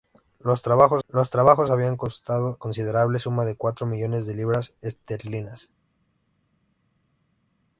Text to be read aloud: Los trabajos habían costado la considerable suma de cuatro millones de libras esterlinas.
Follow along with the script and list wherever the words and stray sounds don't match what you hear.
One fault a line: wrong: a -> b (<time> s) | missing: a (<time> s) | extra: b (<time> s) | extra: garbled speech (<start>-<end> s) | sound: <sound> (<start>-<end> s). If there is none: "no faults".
extra: los trabajos (1.1 s)
missing: la (2.6 s)